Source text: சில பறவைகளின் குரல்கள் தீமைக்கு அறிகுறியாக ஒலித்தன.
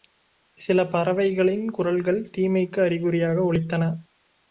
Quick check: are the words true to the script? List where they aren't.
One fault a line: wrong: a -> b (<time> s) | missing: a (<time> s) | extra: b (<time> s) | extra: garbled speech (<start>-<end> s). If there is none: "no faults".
no faults